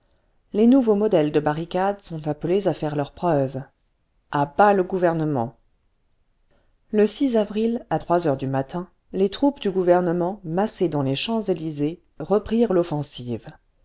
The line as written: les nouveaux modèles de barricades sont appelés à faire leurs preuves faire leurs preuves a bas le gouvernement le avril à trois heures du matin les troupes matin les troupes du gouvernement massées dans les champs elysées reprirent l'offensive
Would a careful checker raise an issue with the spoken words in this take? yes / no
yes